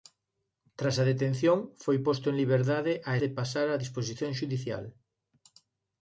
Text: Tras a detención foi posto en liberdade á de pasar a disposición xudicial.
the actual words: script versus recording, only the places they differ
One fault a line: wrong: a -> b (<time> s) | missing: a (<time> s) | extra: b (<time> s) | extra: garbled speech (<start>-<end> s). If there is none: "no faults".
no faults